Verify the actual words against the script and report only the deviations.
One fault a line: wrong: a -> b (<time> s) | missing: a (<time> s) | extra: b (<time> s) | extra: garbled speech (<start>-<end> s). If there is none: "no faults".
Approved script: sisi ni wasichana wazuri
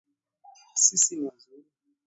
missing: wasichana (1.3 s)